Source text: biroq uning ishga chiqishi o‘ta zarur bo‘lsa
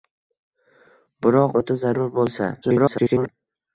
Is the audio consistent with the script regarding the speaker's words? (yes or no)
no